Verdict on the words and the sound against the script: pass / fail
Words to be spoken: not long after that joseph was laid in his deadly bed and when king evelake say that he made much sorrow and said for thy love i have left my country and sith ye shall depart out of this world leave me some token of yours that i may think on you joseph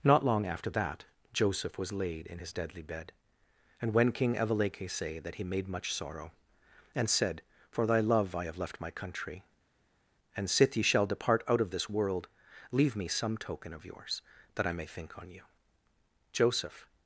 pass